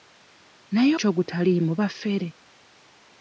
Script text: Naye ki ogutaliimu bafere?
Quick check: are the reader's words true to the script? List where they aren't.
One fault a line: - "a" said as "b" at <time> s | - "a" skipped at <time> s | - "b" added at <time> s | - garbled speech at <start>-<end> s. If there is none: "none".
none